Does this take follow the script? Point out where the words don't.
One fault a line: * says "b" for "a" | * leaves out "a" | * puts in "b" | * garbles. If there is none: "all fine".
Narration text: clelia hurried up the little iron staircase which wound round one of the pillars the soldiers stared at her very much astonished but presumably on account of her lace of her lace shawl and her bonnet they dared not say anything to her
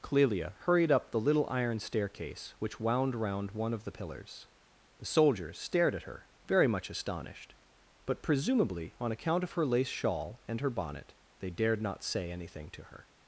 * leaves out "of her lace"